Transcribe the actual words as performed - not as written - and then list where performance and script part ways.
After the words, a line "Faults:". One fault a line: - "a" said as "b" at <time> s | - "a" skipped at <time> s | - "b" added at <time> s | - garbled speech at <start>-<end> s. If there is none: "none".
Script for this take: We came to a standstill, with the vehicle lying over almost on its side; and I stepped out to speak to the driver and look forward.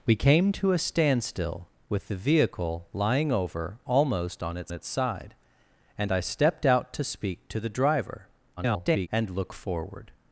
We came to a standstill, with the vehicle lying over almost on its its side; and I stepped out to speak to the driver [garbled] and look forward.
Faults:
- "its" added at 4.7 s
- garbled speech at 8.6-9.1 s